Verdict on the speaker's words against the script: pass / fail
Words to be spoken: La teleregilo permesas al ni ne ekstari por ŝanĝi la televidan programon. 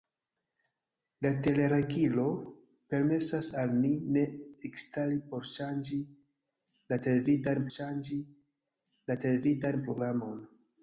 fail